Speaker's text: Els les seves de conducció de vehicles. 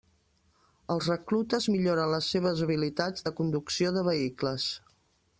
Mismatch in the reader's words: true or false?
true